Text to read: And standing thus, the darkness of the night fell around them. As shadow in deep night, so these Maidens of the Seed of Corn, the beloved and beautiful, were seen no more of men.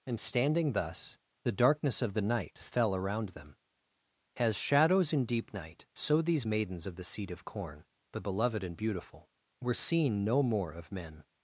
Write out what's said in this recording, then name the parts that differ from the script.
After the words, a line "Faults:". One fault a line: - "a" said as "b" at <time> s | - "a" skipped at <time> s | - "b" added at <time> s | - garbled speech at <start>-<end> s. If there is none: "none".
And standing thus, the darkness of the night fell around them. As shadows in deep night, so these Maidens of the Seed of Corn, the beloved and beautiful, were seen no more of men.
Faults:
- "shadow" said as "shadows" at 4.6 s